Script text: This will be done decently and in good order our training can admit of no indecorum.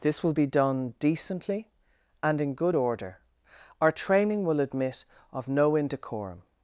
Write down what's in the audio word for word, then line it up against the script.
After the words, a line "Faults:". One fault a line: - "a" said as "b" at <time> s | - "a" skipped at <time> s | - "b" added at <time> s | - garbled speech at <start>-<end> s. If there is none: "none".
This will be done decently and in good order our training will admit of no indecorum.
Faults:
- "can" said as "will" at 4.4 s